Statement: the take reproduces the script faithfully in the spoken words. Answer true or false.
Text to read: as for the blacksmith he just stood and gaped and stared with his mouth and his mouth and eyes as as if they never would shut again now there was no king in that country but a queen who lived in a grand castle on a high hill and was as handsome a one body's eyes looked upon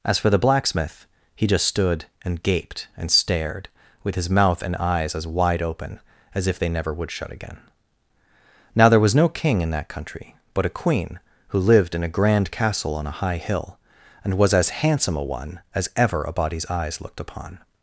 false